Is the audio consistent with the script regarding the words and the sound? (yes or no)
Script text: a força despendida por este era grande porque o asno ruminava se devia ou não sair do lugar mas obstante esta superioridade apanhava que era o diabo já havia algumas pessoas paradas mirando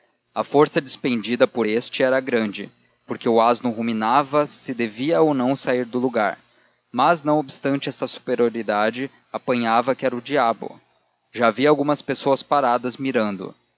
no